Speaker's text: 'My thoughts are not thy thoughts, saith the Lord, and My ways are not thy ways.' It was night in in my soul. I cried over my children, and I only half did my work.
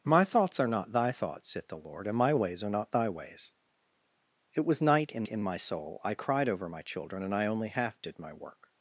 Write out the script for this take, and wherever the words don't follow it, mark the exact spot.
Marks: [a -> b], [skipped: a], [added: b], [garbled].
'My thoughts are not thy thoughts, saith the Lord, and My ways are not thy ways.' It was night in in my soul. I cried over my children, and I only half did my work.